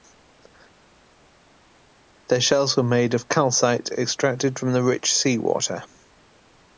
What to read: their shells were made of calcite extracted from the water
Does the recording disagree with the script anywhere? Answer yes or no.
yes